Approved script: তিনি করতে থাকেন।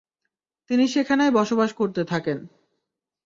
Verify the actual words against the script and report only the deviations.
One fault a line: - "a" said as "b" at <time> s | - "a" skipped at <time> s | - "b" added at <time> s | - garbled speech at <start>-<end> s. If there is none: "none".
- "সেখানেই বসবাস" added at 0.9 s